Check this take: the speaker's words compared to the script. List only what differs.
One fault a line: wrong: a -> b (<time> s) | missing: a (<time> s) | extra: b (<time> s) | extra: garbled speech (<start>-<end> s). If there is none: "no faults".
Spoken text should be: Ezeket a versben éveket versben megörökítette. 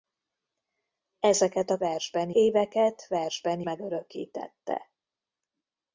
no faults